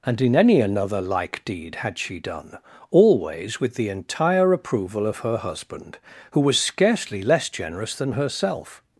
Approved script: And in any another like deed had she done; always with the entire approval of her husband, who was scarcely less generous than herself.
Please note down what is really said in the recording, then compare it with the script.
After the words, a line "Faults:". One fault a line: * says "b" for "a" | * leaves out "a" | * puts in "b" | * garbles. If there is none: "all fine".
And in any another like deed had she done; always with the entire approval of her husband, who was scarcely less generous than herself.
Faults:
all fine